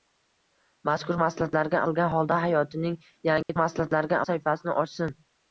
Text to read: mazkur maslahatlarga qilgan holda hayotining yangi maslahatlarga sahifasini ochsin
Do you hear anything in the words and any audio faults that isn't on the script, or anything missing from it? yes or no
yes